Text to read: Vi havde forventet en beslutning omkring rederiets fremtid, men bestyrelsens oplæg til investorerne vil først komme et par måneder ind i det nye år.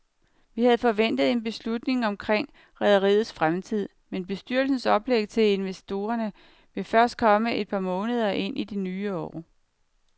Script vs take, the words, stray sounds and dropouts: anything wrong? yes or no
no